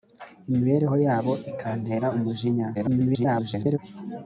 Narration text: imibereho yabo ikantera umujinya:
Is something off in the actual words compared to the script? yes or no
yes